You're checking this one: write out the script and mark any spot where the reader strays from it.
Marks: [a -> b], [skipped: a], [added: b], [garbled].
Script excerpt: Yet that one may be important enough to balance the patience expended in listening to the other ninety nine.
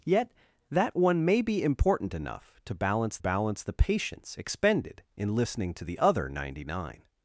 Yet that one may be important enough to balance [added: balance] the patience expended in listening to the other ninety nine.